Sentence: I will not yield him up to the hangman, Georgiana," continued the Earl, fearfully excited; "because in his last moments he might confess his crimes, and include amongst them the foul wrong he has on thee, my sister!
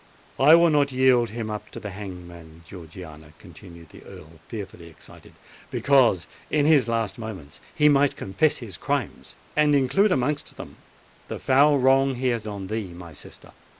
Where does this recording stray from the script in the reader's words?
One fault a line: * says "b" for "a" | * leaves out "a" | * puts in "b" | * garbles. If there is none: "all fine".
all fine